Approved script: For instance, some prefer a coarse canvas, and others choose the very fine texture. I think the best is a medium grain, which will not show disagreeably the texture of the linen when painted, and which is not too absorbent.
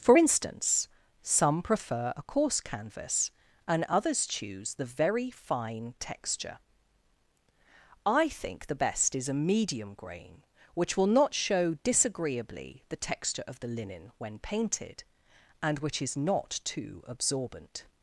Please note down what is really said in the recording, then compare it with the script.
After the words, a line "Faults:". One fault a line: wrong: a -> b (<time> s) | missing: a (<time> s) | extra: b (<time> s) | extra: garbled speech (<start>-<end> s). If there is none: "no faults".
For instance, some prefer a coarse canvas, and others choose the very fine texture. I think the best is a medium grain, which will not show disagreeably the texture of the linen when painted, and which is not too absorbent.
Faults:
no faults